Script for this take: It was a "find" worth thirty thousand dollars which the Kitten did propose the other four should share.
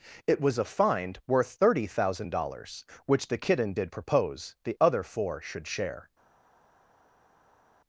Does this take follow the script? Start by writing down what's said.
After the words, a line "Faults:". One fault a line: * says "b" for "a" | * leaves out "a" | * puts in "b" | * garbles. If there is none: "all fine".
It was a "find" worth thirty thousand dollars which the Kitten did propose the other four should share.
Faults:
all fine